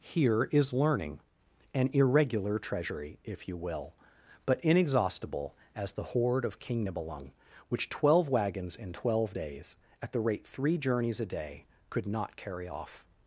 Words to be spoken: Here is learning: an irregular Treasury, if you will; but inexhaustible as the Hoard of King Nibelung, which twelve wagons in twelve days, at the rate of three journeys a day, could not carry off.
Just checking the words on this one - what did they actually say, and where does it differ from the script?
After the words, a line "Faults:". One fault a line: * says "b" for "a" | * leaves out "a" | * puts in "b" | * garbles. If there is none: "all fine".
Here is learning: an irregular Treasury, if you will; but inexhaustible as the Hoard of King Nibelung, which twelve wagons in twelve days, at the rate three journeys a day, could not carry off.
Faults:
* leaves out "of"